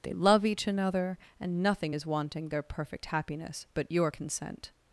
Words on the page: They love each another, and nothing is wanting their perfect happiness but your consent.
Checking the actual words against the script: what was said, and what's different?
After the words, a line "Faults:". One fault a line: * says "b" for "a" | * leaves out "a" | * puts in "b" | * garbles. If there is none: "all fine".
They love each another, and nothing is wanting their perfect happiness but your consent.
Faults:
all fine